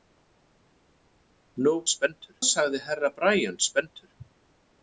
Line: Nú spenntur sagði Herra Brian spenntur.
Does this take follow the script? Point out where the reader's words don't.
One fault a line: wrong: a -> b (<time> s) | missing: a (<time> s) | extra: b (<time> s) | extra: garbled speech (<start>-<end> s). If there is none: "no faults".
no faults